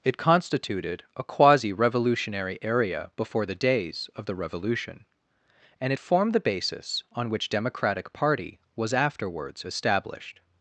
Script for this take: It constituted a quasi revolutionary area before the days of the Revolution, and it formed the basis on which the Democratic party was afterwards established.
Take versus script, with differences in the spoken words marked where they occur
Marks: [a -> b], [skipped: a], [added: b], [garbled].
It constituted a quasi revolutionary area before the days of the Revolution, and it formed the basis on which [skipped: the] Democratic party was afterwards established.